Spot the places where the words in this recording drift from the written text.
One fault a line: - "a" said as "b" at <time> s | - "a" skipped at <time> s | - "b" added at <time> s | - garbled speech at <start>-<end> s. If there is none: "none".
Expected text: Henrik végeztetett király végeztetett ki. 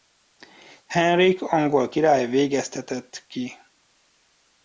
- "végeztetett" said as "angol" at 1.4 s